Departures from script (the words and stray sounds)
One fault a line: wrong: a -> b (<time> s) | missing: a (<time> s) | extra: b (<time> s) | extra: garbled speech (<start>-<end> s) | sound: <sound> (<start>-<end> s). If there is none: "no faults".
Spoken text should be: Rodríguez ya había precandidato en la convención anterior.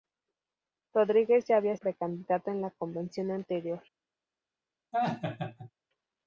sound: laugh (4.9-5.7 s)